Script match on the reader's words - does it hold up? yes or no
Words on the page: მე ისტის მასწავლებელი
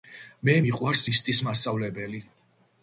no